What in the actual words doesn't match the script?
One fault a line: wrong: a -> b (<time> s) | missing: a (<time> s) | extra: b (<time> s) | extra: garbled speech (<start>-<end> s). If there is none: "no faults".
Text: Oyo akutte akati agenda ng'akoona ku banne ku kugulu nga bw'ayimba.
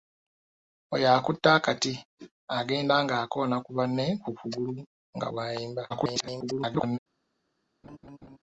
extra: garbled speech (5.9-7.0 s)